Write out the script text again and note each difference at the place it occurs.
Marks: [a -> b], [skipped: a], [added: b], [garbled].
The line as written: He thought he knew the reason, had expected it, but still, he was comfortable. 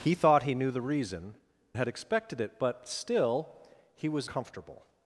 He thought he knew the reason, had expected it, but still, he was comfortable.